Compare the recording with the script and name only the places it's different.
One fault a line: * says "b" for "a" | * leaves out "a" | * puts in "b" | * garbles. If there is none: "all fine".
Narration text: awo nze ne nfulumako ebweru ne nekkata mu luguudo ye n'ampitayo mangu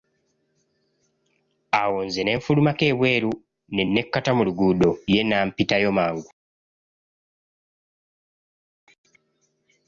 all fine